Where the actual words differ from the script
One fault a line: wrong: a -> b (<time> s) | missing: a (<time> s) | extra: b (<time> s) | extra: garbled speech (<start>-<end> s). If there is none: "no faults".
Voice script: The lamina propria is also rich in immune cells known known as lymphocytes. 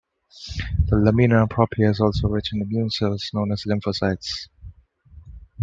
missing: known (3.5 s)